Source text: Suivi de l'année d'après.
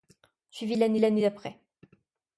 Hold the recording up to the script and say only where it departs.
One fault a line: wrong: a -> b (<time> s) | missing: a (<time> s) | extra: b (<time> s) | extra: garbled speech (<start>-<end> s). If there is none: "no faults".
extra: l'année (1.0 s)